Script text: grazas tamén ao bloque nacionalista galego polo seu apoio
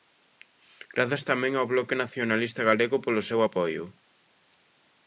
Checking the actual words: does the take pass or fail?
pass